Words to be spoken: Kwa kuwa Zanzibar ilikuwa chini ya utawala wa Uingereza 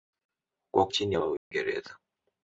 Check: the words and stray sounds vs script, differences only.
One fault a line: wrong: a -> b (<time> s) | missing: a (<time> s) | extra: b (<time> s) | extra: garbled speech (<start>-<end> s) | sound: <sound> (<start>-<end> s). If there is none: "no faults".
missing: kuwa Zanzibar ilikuwa (0.9 s)
missing: utawala (1.2 s)
sound: dropout (1.4-1.5 s)